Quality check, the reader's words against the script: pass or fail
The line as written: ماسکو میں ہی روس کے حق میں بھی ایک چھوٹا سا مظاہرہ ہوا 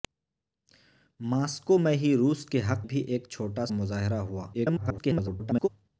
fail